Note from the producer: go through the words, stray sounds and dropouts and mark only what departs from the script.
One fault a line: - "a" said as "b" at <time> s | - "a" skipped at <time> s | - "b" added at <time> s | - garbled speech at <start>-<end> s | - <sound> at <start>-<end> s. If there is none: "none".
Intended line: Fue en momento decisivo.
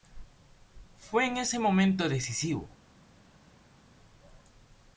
- "ese" added at 1.4 s